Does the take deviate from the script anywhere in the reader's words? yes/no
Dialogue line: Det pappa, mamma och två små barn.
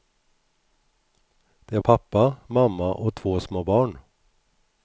no